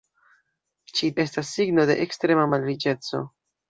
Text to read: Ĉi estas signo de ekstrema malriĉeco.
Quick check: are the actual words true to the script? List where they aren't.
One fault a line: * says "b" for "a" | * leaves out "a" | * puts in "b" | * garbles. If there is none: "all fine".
all fine